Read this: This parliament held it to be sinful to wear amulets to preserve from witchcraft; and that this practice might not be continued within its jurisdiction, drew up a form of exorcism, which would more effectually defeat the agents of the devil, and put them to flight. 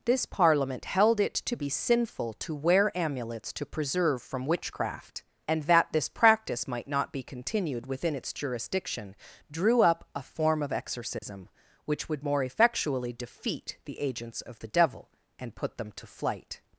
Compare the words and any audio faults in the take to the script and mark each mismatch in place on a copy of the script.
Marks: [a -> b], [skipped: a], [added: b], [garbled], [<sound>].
This parliament held it to be sinful to wear amulets to preserve from witchcraft; and that this practice might not be continued within its jurisdiction, drew up a form of exorcism, [dropout] which would more effectually defeat the agents of the devil, and put them to flight.